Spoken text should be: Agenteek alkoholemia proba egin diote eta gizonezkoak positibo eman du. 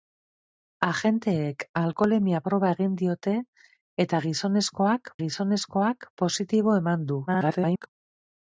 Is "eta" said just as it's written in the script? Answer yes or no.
yes